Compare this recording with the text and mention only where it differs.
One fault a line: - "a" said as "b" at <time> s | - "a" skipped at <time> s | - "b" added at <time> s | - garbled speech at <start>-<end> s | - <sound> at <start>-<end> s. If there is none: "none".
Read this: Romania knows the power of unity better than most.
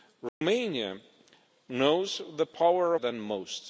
- dropout at 0.3-0.4 s
- "of unity better" skipped at 3.0 s